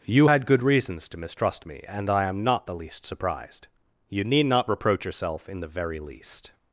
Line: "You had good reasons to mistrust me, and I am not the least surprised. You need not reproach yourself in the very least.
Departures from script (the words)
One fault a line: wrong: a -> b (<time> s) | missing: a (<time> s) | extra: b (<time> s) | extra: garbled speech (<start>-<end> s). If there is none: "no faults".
no faults